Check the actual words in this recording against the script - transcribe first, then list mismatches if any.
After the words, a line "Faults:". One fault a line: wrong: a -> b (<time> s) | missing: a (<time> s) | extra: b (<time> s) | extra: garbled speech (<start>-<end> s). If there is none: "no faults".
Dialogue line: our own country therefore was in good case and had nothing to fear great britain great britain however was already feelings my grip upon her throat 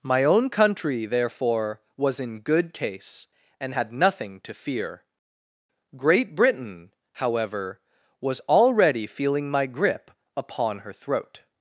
my own country therefore was in good case and had nothing to fear great britain however was already feeling my grip upon her throat
Faults:
wrong: our -> my (0.0 s)
missing: great britain (6.9 s)
wrong: feelings -> feeling (9.1 s)